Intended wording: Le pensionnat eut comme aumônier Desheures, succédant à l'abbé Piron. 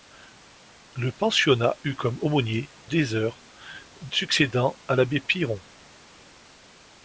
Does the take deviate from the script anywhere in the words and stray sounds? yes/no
no